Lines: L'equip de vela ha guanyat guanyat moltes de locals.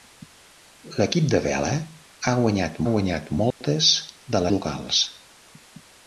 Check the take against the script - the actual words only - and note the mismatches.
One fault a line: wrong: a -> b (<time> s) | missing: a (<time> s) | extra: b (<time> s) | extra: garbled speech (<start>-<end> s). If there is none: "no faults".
no faults